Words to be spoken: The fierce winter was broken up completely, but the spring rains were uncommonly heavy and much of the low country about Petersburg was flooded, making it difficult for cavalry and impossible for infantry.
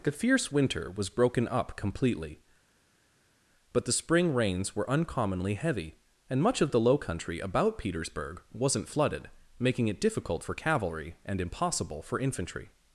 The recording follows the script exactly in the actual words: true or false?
false